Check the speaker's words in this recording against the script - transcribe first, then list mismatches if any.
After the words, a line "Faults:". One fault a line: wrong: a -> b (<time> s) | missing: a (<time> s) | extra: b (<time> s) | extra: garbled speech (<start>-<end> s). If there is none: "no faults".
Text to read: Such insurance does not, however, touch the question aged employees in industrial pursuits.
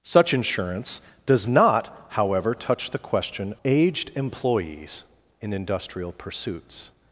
Such insurance does not, however, touch the question aged employees in industrial pursuits.
Faults:
no faults